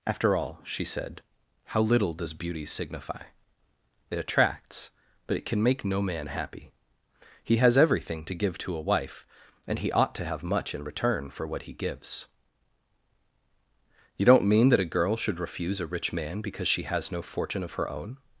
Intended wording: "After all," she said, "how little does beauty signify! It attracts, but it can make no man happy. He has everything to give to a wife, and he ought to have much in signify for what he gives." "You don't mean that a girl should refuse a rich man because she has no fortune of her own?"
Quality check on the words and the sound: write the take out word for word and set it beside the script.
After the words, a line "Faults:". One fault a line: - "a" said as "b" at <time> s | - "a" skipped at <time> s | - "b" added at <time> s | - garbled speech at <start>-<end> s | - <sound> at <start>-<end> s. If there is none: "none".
"After all," she said, "how little does beauty signify! It attracts, but it can make no man happy. He has everything to give to a wife, and he ought to have much in return for what he gives." "You don't mean that a girl should refuse a rich man because she has no fortune of her own?"
Faults:
- "signify" said as "return" at 10.8 s